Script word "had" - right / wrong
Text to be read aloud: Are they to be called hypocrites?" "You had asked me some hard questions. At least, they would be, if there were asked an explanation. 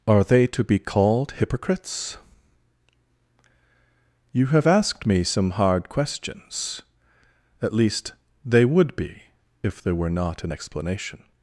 wrong